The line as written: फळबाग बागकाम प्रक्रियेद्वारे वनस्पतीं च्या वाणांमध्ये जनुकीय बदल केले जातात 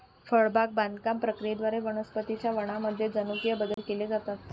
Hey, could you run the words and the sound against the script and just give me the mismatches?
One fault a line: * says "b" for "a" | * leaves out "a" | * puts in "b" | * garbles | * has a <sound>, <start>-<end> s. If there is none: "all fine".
* has a dropout, 3.7-3.8 s